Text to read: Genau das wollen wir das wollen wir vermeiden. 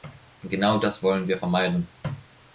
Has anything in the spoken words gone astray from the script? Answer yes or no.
yes